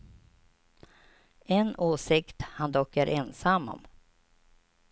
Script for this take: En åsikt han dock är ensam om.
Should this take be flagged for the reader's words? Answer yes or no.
no